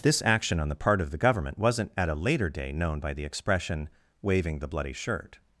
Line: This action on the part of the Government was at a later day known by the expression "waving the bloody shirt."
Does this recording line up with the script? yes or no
no